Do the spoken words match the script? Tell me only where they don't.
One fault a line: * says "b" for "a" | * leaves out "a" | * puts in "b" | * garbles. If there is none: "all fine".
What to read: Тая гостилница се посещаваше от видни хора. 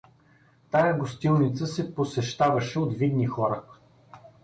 all fine